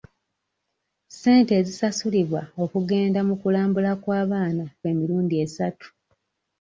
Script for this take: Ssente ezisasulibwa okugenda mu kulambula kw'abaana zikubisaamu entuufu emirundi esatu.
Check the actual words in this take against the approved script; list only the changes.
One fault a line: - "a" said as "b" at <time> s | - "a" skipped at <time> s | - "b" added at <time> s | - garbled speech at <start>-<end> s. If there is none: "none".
- "zikubisaamu entuufu" skipped at 4.7 s